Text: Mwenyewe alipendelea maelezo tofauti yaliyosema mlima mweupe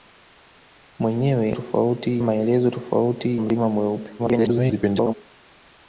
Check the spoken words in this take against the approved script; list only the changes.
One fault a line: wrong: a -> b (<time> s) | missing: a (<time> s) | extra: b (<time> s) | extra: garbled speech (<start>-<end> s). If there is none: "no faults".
wrong: alipendelea -> tofauti (1.5 s)
missing: yaliyosema (3.4 s)
extra: garbled speech (4.2-5.1 s)